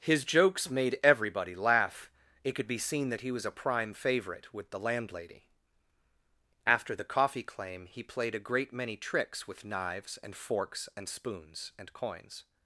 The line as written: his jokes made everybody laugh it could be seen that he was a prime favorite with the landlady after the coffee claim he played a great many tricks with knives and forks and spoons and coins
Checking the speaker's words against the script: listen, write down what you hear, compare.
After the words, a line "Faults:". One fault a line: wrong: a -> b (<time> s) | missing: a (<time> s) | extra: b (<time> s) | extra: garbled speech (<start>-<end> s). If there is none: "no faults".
his jokes made everybody laugh it could be seen that he was a prime favorite with the landlady after the coffee claim he played a great many tricks with knives and forks and spoons and coins
Faults:
no faults